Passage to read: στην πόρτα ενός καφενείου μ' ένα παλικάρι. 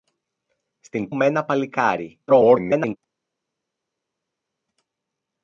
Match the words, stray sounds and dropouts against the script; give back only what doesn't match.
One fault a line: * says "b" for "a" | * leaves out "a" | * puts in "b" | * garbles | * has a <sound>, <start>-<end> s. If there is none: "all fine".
* leaves out "πόρτα ενός καφενείου"
* garbles